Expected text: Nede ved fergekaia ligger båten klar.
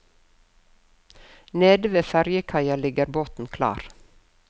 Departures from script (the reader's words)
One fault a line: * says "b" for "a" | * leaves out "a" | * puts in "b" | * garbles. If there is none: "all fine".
all fine